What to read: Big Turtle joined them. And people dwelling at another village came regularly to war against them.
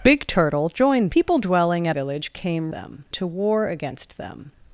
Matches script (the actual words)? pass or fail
fail